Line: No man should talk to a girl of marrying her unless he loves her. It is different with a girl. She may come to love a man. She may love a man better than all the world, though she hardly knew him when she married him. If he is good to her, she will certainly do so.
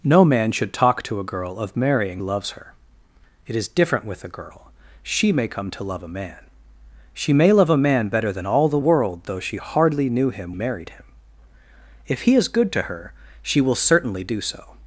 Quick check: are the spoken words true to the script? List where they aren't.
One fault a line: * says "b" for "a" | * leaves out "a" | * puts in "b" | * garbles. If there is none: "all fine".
* leaves out "her unless he"
* leaves out "when she"